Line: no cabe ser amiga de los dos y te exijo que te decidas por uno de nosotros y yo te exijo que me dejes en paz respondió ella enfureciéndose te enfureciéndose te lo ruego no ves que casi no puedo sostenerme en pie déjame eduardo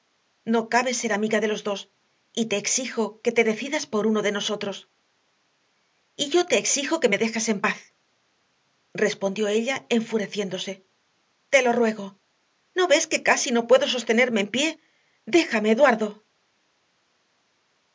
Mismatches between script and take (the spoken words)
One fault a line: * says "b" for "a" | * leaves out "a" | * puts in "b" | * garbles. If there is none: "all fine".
* leaves out "enfureciéndose te"